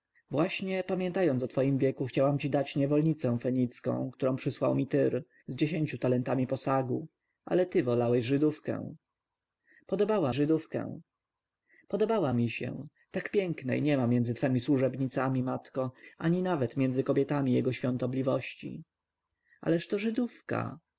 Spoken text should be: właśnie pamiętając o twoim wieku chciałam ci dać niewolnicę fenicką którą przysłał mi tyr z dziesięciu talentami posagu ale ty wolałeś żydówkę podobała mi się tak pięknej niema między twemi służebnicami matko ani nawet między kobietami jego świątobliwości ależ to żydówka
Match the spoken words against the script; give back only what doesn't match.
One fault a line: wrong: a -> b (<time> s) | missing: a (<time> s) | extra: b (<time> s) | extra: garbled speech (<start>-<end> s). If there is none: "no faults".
extra: żydówkę podobała (10.3 s)